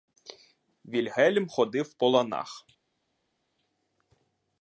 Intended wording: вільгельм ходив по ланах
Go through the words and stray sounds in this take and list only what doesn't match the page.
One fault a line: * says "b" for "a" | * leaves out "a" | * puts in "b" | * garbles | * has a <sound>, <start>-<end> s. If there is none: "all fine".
all fine